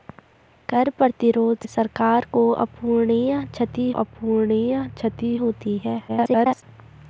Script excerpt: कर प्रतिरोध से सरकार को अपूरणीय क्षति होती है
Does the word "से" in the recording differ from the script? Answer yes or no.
yes